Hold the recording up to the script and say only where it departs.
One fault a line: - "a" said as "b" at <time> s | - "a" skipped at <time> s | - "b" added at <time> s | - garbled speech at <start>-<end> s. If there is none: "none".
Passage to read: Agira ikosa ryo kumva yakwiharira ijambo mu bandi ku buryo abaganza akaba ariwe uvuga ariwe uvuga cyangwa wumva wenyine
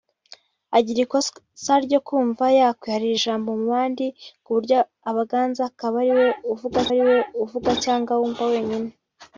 none